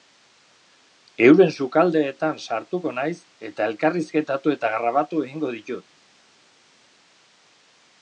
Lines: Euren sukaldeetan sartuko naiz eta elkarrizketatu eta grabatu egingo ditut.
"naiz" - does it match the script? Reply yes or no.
yes